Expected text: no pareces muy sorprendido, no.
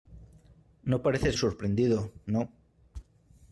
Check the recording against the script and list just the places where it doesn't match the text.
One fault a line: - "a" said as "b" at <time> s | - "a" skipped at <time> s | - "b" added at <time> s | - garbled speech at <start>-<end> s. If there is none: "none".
- "muy" skipped at 1.4 s